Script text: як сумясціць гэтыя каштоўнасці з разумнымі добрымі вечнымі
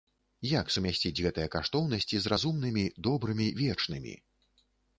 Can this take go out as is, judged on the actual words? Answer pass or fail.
pass